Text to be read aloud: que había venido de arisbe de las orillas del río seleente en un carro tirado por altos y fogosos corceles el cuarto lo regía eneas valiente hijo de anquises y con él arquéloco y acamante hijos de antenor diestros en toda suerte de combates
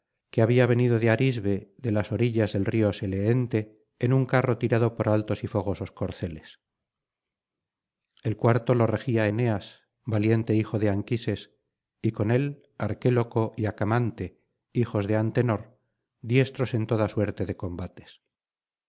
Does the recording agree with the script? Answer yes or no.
yes